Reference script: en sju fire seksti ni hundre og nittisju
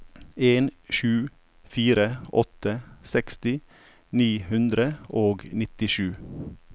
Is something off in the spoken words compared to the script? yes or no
yes